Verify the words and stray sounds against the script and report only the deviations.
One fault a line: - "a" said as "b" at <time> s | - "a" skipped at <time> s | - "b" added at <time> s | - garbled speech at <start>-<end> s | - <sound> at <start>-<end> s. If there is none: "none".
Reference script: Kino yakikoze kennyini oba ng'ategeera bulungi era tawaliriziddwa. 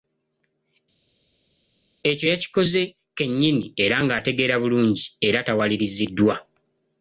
- "Kino" said as "Ekyo" at 2.1 s
- "oba" said as "era" at 3.8 s